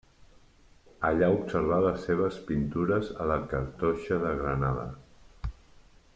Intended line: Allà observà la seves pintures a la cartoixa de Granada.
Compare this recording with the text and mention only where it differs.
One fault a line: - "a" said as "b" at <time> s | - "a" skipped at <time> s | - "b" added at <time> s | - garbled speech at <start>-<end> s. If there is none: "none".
- "la" said as "les" at 1.9 s